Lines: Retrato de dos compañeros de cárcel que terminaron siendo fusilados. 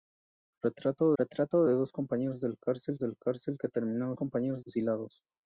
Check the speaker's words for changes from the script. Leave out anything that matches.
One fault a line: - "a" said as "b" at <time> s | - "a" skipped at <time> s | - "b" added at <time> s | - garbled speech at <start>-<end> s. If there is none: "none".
- "retrato" added at 1.2 s
- "de cárcel" added at 3.0 s
- "siendo" said as "compañeros" at 4.1 s